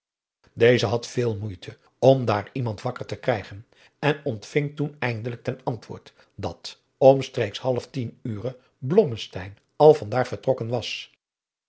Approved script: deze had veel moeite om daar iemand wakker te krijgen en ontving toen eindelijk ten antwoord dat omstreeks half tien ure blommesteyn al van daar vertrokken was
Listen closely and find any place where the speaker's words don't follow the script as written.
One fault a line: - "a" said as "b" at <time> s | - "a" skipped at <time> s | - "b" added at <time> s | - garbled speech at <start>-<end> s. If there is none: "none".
none